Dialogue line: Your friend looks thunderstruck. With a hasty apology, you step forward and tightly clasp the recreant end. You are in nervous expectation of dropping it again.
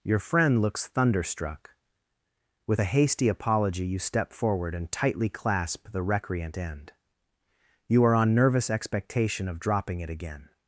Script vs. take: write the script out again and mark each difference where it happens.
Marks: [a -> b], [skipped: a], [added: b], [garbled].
Your friend looks thunderstruck. With a hasty apology, you step forward and tightly clasp the recreant end. You are [in -> on] nervous expectation of dropping it again.